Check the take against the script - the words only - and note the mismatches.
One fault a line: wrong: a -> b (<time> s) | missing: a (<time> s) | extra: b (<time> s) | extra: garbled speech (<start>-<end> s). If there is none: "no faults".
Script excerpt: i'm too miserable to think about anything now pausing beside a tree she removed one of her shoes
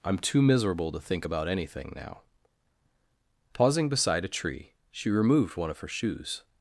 no faults